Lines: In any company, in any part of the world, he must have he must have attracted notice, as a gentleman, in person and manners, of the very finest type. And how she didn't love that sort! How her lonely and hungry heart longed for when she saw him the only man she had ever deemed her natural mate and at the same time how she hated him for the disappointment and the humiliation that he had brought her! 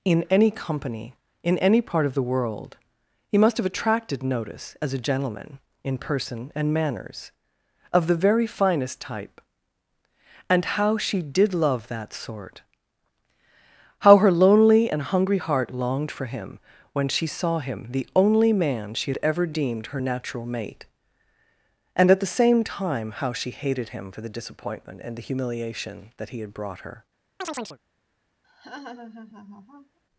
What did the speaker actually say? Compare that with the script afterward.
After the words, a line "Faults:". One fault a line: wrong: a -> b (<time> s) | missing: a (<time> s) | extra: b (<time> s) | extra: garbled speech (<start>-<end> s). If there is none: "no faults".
In any company, in any part of the world, he must have attracted notice, as a gentleman, in person and manners, of the very finest type. And how she did love that sort! How her lonely and hungry heart longed for him when she saw him the only man she had ever deemed her natural mate and at the same time how she hated him for the disappointment and the humiliation that he had brought her!
Faults:
missing: he must have (3.7 s)
wrong: didn't -> did (11.2 s)
extra: him (16.3 s)